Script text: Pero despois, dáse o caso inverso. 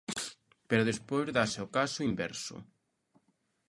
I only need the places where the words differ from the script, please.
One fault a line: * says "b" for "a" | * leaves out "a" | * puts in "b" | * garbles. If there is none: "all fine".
all fine